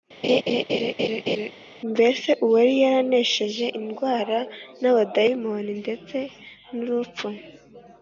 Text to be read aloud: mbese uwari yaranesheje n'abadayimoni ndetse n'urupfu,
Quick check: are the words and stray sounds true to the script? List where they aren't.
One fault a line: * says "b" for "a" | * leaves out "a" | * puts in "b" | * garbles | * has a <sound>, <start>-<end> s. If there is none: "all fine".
* has a laugh, 0.2-1.5 s
* puts in "indwara"